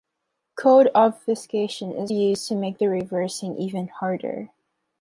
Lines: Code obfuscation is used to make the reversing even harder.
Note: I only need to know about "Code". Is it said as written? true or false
true